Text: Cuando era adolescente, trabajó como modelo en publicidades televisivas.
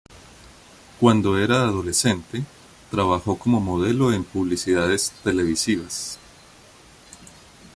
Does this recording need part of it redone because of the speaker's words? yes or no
no